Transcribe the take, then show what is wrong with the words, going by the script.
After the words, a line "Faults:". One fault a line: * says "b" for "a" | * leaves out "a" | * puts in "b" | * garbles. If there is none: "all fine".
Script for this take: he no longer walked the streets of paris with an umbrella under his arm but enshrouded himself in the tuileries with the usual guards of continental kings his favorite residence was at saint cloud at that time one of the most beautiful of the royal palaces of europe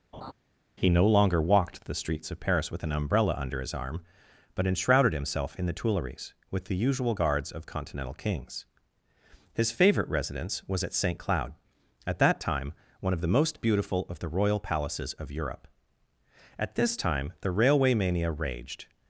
he no longer walked the streets of paris with an umbrella under his arm but enshrouded himself in the tuileries with the usual guards of continental kings his favorite residence was at saint cloud at that time one of the most beautiful of the royal palaces of europe at this time the railway mania raged
Faults:
* puts in "at this time the railway mania raged"